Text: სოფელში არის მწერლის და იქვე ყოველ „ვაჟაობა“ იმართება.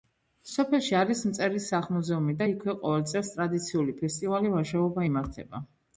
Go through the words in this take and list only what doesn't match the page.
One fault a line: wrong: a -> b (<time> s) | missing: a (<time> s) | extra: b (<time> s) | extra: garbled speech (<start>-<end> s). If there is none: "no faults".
extra: სახლ მუზეუმი (1.7 s)
extra: წელს ტრადიციული ფესტივალი (3.1 s)